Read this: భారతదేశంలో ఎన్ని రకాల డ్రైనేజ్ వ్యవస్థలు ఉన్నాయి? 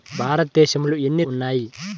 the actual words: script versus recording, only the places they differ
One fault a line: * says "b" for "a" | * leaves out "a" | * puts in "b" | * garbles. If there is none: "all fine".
* leaves out "రకాల డ్రైనేజ్ వ్యవస్థలు"